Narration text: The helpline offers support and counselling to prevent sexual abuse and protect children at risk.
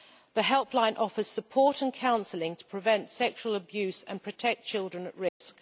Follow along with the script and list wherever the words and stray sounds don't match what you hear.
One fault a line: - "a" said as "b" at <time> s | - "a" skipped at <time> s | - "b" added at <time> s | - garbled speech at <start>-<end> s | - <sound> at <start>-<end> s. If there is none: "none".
- dropout at 5.3-5.4 s